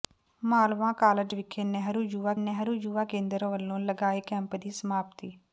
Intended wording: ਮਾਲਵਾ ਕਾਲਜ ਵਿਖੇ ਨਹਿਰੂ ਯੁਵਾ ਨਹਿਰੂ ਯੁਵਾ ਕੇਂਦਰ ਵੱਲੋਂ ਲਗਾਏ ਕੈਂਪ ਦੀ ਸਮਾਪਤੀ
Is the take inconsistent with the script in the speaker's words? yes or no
no